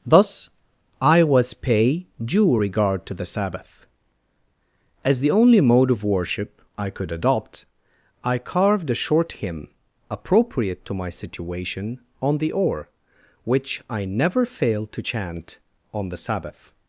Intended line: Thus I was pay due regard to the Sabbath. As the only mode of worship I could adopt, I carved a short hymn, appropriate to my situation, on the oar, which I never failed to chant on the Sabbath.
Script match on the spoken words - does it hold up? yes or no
yes